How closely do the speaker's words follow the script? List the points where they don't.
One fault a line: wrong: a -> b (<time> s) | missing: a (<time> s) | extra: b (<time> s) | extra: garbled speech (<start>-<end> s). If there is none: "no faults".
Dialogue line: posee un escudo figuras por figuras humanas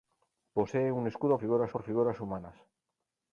no faults